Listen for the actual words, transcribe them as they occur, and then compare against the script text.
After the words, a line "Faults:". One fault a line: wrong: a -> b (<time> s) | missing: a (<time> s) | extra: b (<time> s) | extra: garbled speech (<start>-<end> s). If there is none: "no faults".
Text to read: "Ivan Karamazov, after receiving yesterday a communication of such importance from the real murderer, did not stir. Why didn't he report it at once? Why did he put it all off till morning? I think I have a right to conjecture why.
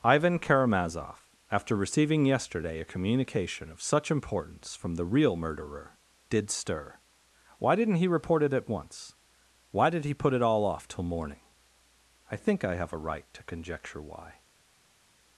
"Ivan Karamazov, after receiving yesterday a communication of such importance from the real murderer, did stir. Why didn't he report it at once? Why did he put it all off till morning? I think I have a right to conjecture why.
Faults:
missing: not (6.5 s)